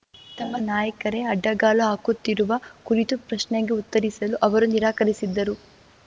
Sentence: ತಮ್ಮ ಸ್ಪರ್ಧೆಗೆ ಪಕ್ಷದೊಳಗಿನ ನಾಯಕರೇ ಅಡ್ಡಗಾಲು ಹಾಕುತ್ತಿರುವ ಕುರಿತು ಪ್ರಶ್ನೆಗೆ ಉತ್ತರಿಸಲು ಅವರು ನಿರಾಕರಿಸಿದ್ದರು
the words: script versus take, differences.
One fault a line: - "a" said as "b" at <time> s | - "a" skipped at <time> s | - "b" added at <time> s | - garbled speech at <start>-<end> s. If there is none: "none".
- "ಸ್ಪರ್ಧೆಗೆ ಪಕ್ಷದೊಳಗಿನ" skipped at 0.6 s